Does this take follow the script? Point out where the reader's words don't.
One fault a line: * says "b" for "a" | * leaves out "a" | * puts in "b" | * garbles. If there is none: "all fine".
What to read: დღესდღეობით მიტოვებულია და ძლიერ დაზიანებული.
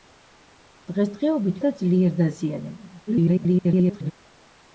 * leaves out "მიტოვებულია"
* garbles